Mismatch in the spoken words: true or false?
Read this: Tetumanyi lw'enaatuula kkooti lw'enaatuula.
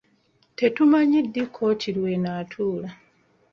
true